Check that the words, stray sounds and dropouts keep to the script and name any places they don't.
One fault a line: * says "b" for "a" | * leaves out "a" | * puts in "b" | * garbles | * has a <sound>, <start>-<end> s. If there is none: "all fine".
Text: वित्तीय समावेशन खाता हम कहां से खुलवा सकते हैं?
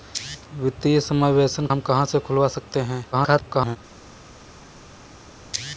* leaves out "खाता"
* garbles